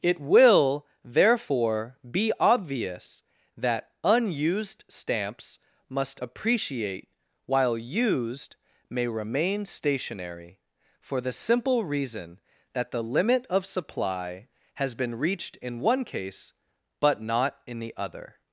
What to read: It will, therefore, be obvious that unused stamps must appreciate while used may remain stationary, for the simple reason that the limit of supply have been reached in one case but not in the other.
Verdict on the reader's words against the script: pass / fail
fail